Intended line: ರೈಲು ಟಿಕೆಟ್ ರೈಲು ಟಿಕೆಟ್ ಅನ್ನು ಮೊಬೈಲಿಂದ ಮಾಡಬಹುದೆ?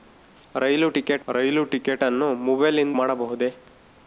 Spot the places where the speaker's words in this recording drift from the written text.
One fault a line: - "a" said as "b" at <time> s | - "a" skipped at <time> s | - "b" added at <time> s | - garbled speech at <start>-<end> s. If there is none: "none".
none